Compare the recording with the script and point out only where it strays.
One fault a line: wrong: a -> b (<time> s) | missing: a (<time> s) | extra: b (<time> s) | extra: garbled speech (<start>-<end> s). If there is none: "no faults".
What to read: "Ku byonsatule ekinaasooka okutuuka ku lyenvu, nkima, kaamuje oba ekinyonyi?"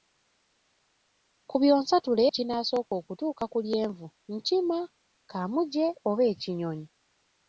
no faults